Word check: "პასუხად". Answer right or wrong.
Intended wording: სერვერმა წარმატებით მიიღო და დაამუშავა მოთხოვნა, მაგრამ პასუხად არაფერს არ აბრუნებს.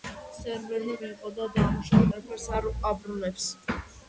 wrong